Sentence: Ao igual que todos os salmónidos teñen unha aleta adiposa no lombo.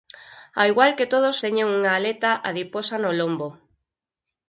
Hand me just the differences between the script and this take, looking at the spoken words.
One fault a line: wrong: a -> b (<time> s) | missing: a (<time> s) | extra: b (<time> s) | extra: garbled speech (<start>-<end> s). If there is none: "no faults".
missing: os salmónidos (1.4 s)